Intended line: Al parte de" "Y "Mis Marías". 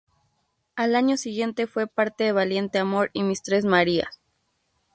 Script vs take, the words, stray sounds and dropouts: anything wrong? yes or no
yes